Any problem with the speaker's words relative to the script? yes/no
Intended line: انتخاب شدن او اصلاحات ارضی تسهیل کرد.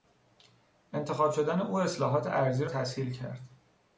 no